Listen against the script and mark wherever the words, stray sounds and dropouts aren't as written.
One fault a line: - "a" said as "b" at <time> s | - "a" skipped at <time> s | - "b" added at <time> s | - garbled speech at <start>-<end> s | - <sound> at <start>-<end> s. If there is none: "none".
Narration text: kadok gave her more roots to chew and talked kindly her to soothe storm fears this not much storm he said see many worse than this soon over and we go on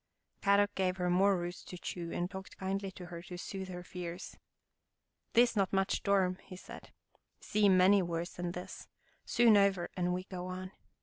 - "to" added at 2.9 s
- "storm" said as "her" at 3.7 s